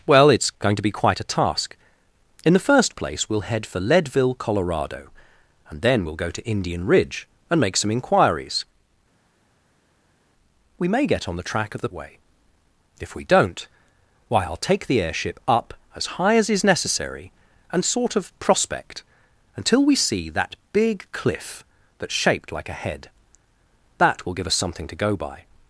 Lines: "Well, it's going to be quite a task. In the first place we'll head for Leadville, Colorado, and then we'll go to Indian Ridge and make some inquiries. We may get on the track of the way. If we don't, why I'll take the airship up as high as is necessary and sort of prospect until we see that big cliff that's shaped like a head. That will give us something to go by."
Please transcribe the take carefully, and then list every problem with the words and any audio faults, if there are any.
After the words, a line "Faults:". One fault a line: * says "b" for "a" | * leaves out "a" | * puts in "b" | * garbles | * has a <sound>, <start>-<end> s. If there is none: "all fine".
"Well, it's going to be quite a task. In the first place we'll head for Leadville, Colorado, and then we'll go to Indian Ridge and make some inquiries. We may get on the track of the way. If we don't, why I'll take the airship up as high as is necessary and sort of prospect until we see that big cliff that's shaped like a head. That will give us something to go by."
Faults:
all fine